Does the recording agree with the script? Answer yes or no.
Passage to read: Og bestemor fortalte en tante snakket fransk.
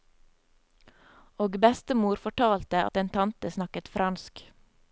no